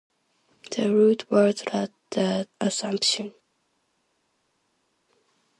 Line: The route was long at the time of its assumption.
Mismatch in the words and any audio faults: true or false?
true